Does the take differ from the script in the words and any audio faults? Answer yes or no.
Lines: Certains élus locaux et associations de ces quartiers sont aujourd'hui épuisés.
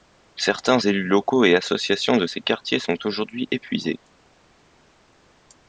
no